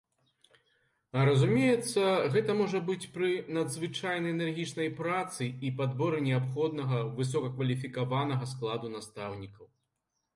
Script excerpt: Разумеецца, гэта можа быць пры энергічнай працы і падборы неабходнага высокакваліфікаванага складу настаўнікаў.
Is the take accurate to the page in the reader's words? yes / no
no